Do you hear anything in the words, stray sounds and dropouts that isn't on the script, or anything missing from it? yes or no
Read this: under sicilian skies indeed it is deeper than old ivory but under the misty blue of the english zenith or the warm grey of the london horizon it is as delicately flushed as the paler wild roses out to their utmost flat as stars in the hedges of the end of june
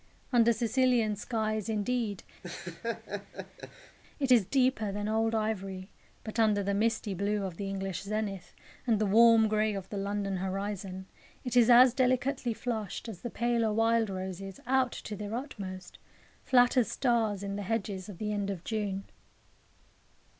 yes